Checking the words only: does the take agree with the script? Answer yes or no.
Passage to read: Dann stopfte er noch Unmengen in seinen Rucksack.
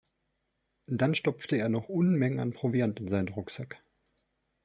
no